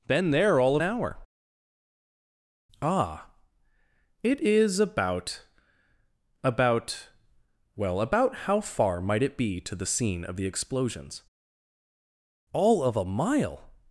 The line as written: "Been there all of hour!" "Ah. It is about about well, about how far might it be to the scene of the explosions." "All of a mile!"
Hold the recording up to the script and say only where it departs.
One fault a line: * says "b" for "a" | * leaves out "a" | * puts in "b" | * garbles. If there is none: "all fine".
all fine